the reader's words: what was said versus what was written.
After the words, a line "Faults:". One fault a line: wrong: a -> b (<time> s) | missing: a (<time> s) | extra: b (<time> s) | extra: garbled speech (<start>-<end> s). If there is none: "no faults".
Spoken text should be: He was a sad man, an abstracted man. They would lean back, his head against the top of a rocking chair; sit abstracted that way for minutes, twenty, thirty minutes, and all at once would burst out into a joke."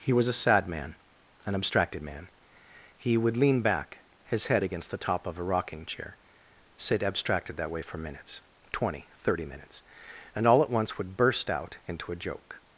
He was a sad man, an abstracted man. He would lean back, his head against the top of a rocking chair; sit abstracted that way for minutes, twenty, thirty minutes, and all at once would burst out into a joke."
Faults:
wrong: They -> He (3.0 s)